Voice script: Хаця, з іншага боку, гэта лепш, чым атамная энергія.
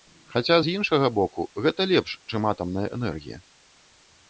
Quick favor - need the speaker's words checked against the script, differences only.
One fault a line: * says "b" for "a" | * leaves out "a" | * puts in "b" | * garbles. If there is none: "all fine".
all fine